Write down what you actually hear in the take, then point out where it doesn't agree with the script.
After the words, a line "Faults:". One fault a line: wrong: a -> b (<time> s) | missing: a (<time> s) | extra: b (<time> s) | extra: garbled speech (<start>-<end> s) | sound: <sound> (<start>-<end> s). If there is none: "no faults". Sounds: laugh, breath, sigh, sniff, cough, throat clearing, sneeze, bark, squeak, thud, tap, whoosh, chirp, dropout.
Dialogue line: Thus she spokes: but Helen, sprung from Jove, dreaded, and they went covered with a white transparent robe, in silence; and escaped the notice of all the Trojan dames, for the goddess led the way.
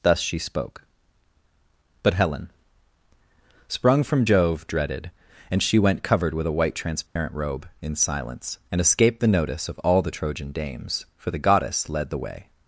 Thus she spoke: but Helen, sprung from Jove, dreaded, and she went covered with a white transparent robe, in silence; and escaped the notice of all the Trojan dames, for the goddess led the way.
Faults:
wrong: spokes -> spoke (0.4 s)
wrong: they -> she (5.6 s)
sound: dropout (7.1-7.2 s)